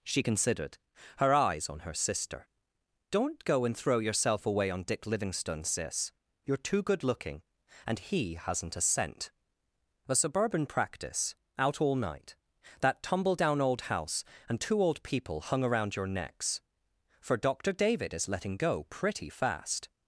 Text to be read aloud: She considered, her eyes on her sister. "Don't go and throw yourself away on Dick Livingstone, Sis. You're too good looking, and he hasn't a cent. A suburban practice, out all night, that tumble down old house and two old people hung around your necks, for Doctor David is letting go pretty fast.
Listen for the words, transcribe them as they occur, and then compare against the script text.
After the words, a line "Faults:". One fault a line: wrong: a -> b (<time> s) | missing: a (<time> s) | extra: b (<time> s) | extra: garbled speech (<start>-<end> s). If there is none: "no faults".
She considered, her eyes on her sister. "Don't go and throw yourself away on Dick Livingstone, Sis. You're too good looking, and he hasn't a cent. A suburban practice, out all night, that tumble down old house and two old people hung around your necks, for Doctor David is letting go pretty fast.
Faults:
no faults